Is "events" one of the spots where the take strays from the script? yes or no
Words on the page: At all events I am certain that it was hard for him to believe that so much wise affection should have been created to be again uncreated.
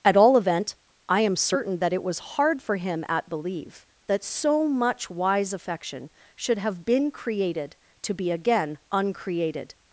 yes